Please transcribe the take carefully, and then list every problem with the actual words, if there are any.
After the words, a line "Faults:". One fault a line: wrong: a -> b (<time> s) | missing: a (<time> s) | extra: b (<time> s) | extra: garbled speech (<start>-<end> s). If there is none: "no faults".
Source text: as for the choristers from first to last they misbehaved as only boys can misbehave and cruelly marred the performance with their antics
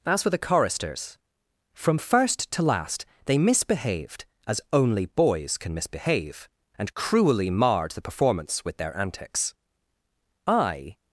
as for the choristers from first to last they misbehaved as only boys can misbehave and cruelly marred the performance with their antics i
Faults:
extra: i (10.5 s)